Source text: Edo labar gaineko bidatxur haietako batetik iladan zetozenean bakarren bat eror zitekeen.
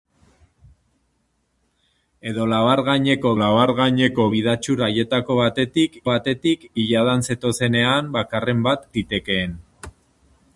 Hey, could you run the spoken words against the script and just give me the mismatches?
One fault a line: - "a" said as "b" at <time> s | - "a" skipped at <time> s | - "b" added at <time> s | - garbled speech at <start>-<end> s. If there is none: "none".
- "labar gaineko" added at 3.4 s
- "batetik" added at 6.1 s
- "eror" skipped at 8.9 s